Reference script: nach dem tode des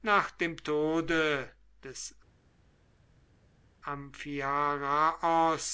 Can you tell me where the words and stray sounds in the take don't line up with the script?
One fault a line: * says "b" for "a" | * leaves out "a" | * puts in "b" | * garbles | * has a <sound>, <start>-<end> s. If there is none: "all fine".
all fine